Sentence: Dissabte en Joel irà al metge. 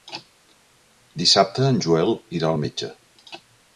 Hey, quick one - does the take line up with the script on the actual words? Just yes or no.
yes